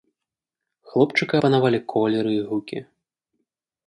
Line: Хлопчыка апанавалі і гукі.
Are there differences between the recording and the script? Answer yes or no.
yes